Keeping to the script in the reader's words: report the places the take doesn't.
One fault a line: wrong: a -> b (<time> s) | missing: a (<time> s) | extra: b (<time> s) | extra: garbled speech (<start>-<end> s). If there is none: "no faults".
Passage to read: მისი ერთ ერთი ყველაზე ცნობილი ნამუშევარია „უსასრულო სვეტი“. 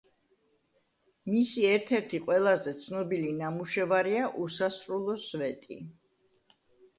no faults